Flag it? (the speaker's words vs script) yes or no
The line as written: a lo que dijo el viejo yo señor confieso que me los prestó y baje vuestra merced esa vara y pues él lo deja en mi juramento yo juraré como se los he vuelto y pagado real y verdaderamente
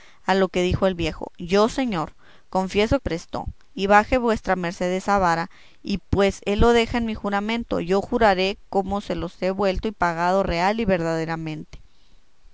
yes